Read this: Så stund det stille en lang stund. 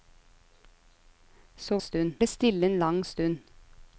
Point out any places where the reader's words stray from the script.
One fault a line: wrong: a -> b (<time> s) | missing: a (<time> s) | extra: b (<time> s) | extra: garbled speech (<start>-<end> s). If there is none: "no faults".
no faults